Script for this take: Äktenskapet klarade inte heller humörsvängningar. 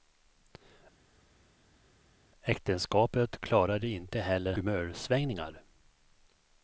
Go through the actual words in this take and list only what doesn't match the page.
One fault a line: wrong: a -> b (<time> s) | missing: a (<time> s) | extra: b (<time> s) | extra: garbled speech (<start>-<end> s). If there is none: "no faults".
no faults